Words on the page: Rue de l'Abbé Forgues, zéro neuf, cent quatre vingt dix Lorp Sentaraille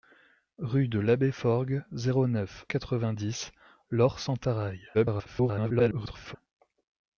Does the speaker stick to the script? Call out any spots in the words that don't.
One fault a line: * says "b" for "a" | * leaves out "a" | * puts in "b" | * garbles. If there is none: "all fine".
* leaves out "cent"
* garbles